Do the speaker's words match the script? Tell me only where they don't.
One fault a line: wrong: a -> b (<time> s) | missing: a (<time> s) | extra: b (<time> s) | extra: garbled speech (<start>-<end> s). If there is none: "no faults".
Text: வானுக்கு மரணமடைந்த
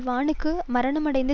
no faults